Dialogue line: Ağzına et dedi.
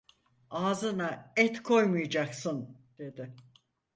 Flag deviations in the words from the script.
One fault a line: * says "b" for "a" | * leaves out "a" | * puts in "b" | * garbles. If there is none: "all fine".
* puts in "koymayacaksın"